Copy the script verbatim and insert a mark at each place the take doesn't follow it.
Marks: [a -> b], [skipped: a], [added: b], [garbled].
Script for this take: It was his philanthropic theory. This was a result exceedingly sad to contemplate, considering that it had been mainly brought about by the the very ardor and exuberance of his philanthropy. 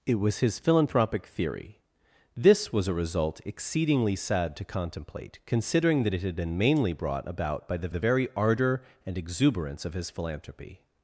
It was his philanthropic theory. This was a result exceedingly sad to contemplate, considering that it had been mainly brought about by the the very ardor and exuberance of his philanthropy.